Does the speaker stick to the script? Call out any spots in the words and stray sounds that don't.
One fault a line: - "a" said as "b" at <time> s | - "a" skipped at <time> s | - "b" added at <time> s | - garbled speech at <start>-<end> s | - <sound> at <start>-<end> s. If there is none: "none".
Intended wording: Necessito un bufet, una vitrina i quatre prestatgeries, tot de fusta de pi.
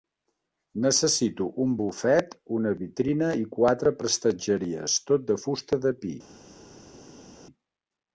none